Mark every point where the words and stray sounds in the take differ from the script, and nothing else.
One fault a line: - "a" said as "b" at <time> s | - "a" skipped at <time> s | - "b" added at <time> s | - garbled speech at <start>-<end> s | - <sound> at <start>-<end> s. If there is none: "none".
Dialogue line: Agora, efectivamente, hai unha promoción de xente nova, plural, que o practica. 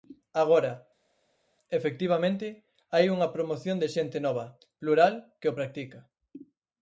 none